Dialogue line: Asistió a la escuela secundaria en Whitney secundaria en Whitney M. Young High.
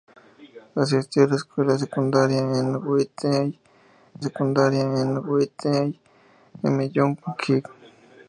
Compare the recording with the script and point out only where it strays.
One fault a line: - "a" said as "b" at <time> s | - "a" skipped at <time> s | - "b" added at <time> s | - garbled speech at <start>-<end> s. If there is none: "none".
none